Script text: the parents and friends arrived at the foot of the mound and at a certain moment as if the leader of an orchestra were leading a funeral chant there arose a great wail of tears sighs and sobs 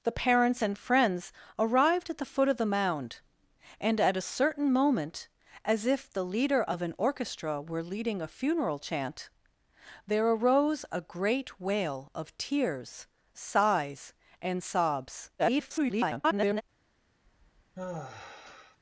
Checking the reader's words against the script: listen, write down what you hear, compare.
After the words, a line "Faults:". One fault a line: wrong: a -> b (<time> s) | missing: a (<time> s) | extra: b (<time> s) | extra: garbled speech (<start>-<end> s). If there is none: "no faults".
the parents and friends arrived at the foot of the mound and at a certain moment as if the leader of an orchestra were leading a funeral chant there arose a great wail of tears sighs and sobs [garbled]
Faults:
extra: garbled speech (15.4-16.6 s)